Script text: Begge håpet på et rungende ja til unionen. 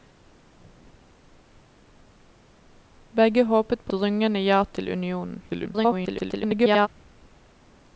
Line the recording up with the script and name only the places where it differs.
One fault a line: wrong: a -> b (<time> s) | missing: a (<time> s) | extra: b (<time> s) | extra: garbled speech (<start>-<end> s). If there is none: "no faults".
missing: et (3.9 s)
extra: garbled speech (5.5-6.9 s)